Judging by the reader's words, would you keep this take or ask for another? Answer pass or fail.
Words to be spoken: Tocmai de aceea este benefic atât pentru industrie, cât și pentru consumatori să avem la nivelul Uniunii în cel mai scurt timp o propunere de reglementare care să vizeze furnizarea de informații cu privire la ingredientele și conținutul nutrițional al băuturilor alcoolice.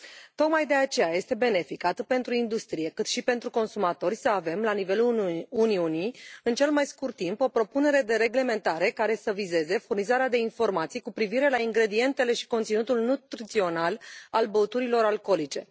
pass